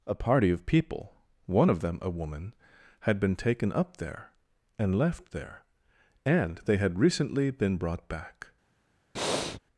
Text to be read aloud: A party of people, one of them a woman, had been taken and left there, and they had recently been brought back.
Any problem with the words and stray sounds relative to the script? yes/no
yes